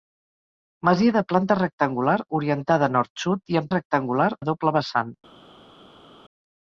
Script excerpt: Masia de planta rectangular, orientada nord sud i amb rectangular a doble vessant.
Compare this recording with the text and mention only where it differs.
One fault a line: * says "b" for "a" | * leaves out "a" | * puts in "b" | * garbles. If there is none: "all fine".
all fine